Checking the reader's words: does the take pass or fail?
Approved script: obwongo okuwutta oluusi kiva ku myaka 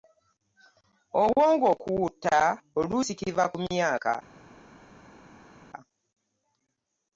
pass